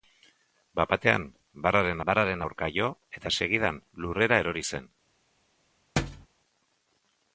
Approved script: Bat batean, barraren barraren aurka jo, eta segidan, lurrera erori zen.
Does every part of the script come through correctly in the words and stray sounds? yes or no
no